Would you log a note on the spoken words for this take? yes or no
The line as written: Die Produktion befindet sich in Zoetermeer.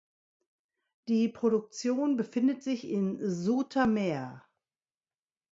no